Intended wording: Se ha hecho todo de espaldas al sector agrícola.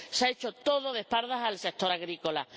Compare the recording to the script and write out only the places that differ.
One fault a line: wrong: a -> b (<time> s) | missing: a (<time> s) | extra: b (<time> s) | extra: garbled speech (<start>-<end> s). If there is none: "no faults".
no faults